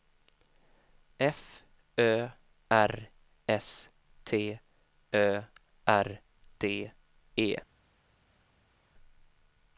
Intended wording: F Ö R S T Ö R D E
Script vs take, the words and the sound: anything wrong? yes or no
no